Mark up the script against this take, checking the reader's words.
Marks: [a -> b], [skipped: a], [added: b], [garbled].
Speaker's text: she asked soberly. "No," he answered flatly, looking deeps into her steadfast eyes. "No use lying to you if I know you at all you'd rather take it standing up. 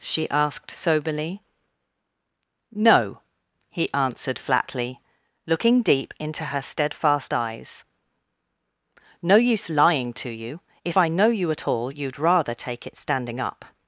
she asked soberly. "No," he answered flatly, looking [deeps -> deep] into her steadfast eyes. "No use lying to you if I know you at all you'd rather take it standing up.